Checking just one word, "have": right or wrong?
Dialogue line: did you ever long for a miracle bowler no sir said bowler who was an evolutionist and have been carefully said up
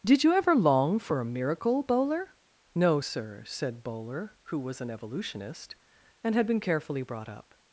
wrong